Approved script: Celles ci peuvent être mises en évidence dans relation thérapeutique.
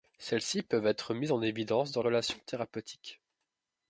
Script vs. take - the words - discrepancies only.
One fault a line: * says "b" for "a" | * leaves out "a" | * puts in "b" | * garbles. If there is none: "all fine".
all fine